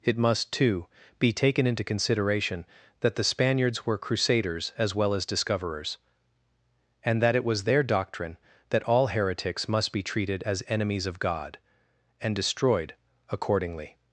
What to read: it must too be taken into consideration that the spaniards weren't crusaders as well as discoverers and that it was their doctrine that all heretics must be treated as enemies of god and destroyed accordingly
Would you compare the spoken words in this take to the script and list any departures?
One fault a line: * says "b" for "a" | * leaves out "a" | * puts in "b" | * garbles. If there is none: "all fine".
* says "were" for "weren't"